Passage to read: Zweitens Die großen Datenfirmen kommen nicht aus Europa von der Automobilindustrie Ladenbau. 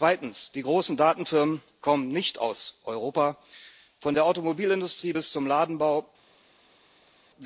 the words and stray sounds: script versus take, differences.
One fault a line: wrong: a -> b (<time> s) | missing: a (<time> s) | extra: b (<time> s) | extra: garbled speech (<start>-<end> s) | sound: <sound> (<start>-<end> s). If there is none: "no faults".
extra: bis zum (5.1 s)